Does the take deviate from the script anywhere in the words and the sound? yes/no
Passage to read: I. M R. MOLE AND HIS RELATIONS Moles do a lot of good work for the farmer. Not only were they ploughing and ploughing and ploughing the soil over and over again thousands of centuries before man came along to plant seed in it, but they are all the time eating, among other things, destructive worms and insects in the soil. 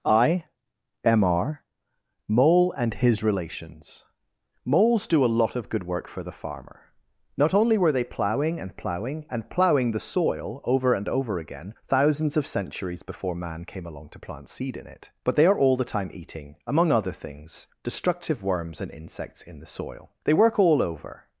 yes